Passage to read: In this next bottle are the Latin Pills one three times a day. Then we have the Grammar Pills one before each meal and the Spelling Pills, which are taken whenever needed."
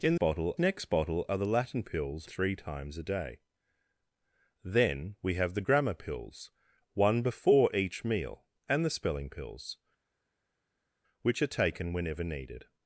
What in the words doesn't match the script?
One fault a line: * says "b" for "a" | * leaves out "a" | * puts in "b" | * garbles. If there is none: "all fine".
* says "bottle" for "this"
* leaves out "one"